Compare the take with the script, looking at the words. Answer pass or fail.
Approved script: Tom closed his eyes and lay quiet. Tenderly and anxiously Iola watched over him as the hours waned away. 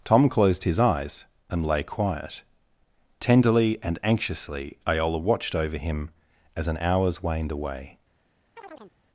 fail